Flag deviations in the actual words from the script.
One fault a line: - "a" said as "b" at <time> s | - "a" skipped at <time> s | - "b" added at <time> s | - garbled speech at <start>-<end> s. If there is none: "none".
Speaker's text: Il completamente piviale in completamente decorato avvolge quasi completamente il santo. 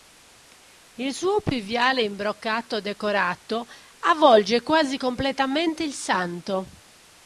- "completamente" said as "suo" at 1.1 s
- "completamente" said as "broccato" at 2.2 s